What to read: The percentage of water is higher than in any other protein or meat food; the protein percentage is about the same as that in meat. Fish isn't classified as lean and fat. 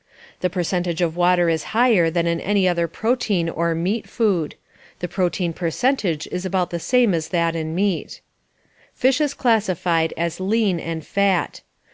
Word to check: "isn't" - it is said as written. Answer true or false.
false